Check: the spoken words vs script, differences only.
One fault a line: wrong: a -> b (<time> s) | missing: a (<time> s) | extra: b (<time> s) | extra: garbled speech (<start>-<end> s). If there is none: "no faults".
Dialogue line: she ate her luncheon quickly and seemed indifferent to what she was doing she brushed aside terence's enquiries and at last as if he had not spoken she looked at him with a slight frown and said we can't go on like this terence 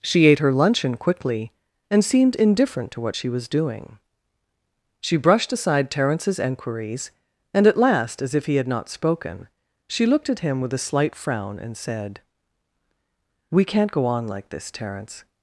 no faults